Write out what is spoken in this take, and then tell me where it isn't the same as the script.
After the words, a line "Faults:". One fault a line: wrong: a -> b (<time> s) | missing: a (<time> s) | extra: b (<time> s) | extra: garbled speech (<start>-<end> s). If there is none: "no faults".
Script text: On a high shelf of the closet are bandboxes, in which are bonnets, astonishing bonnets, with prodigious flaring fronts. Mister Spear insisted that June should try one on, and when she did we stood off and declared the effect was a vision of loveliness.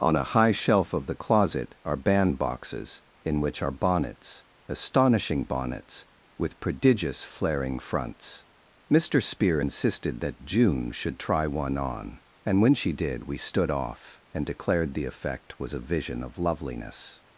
On a high shelf of the closet are bandboxes, in which are bonnets, astonishing bonnets, with prodigious flaring fronts. Mister Spear insisted that June should try one on, and when she did we stood off and declared the effect was a vision of loveliness.
Faults:
no faults